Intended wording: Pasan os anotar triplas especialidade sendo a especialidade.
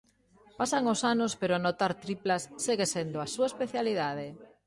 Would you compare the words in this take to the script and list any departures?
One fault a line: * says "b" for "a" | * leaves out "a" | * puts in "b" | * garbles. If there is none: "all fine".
* puts in "anos pero"
* says "segue" for "especialidade"
* puts in "súa"